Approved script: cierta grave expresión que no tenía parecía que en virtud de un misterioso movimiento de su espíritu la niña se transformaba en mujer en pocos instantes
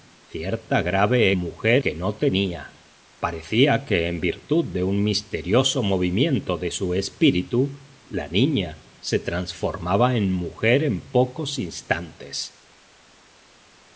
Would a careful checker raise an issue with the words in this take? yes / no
yes